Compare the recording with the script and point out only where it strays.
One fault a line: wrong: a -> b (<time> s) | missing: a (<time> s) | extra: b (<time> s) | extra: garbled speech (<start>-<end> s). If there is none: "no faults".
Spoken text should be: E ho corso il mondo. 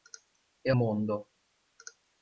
missing: ho corso il (0.7 s)